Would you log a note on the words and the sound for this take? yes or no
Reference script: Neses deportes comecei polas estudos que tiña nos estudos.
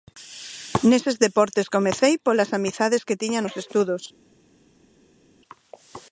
yes